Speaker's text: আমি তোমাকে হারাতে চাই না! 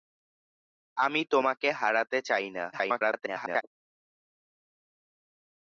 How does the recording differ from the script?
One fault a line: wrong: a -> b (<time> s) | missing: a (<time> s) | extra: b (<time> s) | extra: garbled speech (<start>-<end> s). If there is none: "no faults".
extra: garbled speech (2.7-3.6 s)